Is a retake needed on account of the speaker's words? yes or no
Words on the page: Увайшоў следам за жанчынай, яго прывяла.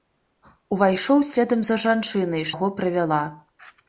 no